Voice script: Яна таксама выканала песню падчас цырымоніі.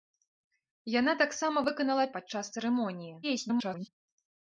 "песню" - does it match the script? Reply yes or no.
no